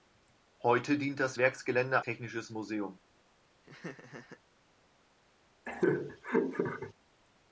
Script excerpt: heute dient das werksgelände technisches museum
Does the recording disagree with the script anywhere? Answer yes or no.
no